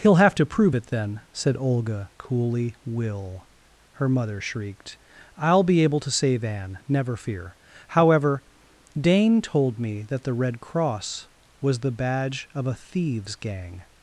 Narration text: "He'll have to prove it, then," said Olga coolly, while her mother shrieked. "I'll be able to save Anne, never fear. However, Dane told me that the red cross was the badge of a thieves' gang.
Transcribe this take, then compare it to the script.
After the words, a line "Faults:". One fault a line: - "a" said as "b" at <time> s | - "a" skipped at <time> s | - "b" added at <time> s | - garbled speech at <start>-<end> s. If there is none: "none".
"He'll have to prove it, then," said Olga coolly, will her mother shrieked. "I'll be able to save Anne, never fear. However, Dane told me that the red cross was the badge of a thieves' gang.
Faults:
- "while" said as "will" at 2.8 s